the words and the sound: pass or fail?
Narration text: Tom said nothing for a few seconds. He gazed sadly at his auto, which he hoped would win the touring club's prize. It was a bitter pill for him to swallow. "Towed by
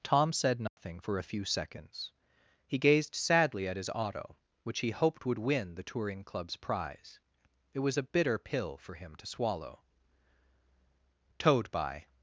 fail